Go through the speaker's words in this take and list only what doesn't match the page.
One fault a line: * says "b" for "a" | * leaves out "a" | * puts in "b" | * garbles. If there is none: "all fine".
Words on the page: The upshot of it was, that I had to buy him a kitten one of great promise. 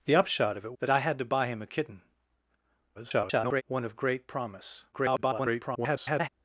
* leaves out "was"
* garbles
* garbles